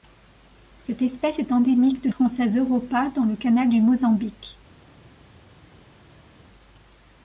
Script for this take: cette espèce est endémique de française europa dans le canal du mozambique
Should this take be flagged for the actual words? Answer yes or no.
no